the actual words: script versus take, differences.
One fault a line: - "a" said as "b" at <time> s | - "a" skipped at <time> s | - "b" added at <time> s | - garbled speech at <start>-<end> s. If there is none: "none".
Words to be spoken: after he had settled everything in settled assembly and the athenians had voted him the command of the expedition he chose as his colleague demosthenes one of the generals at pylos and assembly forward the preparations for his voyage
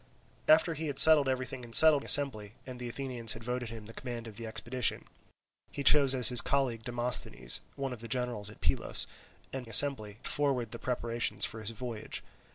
none